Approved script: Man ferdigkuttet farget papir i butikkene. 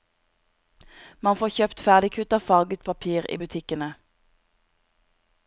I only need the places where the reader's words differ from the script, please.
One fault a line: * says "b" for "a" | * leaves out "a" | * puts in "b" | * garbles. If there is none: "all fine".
* puts in "får kjøpt"